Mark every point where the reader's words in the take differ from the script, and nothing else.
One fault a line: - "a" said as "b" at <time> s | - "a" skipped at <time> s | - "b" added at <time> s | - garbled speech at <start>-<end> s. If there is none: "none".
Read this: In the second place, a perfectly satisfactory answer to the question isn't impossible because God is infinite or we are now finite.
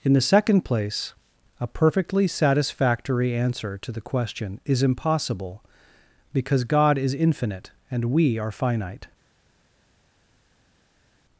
- "isn't" said as "is" at 4.7 s
- "or" said as "and" at 7.9 s
- "now" skipped at 8.5 s